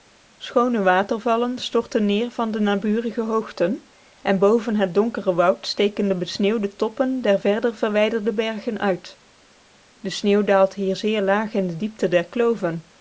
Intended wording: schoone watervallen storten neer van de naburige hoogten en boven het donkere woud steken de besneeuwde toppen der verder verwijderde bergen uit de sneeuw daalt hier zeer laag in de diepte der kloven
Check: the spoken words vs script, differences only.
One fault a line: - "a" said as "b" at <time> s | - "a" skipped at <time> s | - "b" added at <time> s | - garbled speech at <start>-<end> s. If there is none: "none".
none